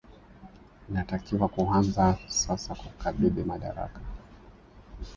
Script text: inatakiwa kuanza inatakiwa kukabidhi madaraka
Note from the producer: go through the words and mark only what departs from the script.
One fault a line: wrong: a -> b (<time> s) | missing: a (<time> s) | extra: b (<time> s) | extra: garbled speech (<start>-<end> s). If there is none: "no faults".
wrong: inatakiwa -> sasa (2.3 s)